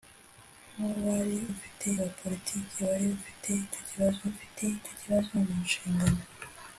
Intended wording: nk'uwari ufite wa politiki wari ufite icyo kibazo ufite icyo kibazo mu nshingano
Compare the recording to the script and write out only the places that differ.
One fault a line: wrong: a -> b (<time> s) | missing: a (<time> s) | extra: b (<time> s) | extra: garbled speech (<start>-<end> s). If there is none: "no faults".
no faults